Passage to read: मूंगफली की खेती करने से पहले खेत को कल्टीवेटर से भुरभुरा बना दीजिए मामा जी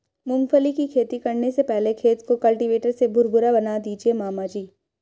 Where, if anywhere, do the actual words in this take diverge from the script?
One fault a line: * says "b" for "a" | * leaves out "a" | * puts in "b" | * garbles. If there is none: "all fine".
all fine